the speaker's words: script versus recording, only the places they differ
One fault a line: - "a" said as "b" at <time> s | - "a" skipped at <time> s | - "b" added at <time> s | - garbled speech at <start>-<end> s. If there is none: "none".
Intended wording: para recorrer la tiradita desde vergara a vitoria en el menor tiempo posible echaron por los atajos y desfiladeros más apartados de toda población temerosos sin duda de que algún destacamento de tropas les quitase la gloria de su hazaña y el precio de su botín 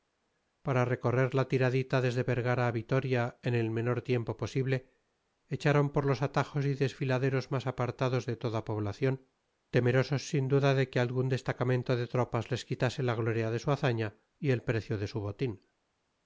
none